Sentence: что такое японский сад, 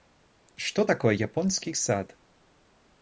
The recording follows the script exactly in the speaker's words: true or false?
true